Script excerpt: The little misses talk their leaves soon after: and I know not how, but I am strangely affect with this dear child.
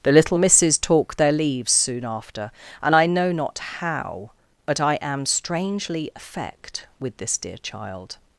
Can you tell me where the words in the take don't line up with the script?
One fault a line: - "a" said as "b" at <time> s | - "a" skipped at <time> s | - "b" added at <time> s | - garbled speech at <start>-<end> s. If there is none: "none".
none